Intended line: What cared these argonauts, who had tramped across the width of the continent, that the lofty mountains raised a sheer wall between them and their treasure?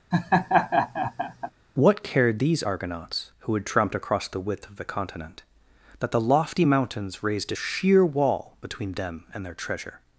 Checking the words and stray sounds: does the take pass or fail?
fail